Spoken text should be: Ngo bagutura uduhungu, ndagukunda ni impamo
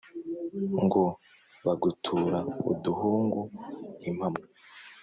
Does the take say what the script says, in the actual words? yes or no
no